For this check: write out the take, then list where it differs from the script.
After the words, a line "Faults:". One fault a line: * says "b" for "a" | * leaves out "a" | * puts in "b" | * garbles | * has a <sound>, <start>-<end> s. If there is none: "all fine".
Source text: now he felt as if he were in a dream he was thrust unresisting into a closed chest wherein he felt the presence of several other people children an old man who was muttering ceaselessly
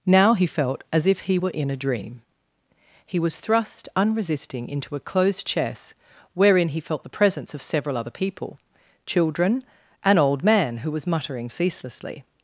now he felt as if he were in a dream he was thrust unresisting into a closed chest wherein he felt the presence of several other people children an old man who was muttering ceaselessly
Faults:
all fine